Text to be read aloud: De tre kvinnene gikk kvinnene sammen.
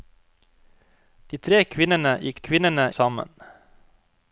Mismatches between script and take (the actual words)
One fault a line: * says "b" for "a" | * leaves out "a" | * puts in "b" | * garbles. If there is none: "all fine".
all fine